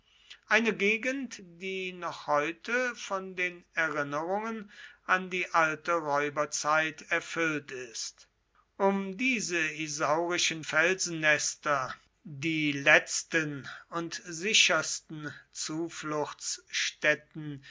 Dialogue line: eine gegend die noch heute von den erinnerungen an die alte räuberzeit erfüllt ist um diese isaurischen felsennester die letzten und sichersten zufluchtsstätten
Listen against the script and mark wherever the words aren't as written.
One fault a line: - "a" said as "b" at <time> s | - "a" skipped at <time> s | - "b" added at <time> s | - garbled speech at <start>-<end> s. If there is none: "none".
none